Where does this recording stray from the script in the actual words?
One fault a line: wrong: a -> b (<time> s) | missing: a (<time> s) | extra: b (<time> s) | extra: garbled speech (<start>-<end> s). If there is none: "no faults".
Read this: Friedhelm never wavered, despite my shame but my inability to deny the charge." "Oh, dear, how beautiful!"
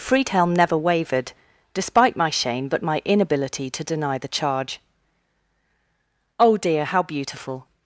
no faults